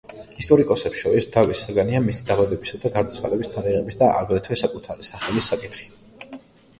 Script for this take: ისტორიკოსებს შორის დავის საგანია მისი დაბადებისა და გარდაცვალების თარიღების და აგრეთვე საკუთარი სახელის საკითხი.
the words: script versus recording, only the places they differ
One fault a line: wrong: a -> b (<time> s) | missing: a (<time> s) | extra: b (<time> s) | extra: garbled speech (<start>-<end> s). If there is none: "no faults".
no faults